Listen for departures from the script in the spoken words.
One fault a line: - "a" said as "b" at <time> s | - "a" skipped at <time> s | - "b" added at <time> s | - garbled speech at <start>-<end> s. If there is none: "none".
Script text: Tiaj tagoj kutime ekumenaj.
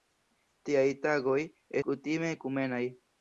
none